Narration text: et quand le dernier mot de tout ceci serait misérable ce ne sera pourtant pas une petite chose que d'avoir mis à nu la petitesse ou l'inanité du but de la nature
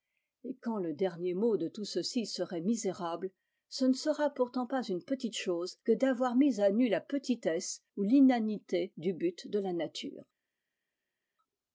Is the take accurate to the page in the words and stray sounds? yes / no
yes